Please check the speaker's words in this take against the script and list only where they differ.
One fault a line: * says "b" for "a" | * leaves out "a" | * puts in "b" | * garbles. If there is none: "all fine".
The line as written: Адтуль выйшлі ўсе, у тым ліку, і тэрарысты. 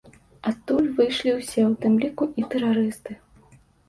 all fine